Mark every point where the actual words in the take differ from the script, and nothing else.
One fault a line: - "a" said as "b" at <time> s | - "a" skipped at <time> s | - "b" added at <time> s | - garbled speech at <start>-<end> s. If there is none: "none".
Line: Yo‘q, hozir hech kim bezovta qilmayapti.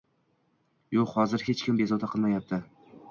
none